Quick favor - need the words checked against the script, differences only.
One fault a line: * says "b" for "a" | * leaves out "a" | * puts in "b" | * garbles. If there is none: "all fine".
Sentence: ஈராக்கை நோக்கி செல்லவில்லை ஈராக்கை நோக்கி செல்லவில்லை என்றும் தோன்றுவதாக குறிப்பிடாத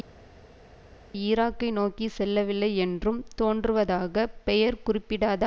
* leaves out "ஈராக்கை நோக்கி செல்லவில்லை"
* puts in "பெயர்"